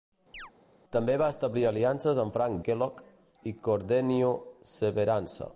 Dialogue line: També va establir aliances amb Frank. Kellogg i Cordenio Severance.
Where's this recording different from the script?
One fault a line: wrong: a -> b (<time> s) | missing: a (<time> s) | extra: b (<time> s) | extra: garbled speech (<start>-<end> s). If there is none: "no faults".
no faults